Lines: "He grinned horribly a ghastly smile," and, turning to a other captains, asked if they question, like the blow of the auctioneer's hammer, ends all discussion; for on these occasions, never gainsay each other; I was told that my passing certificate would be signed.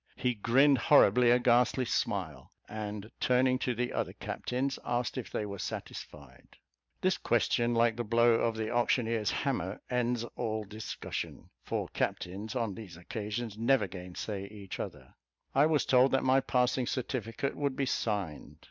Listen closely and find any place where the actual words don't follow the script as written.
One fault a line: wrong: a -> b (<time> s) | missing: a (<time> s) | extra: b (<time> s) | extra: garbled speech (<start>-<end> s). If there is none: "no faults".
wrong: a -> the (3.8 s)
extra: were satisfied This (5.5 s)
extra: captains (11.9 s)